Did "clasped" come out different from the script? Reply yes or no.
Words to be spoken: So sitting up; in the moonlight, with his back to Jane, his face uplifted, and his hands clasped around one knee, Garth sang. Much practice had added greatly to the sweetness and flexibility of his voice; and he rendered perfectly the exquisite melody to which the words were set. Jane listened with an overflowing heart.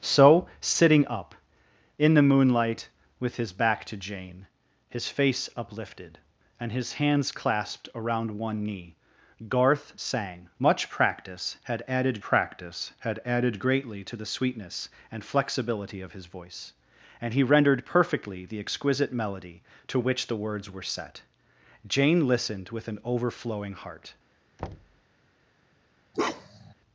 no